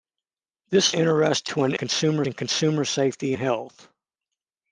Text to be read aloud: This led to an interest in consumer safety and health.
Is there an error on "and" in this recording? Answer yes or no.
yes